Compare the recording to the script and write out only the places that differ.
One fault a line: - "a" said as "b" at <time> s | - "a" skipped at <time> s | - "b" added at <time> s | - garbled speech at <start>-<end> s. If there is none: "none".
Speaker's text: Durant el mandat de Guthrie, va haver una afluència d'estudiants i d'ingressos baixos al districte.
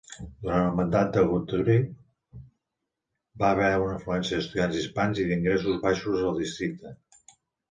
- "hispans" added at 4.8 s